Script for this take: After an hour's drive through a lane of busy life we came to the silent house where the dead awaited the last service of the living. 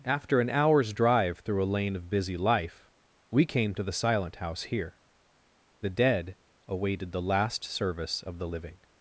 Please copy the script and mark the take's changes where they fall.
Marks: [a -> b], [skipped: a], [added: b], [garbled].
After an hour's drive through a lane of busy life we came to the silent house [where -> here] the dead awaited the last service of the living.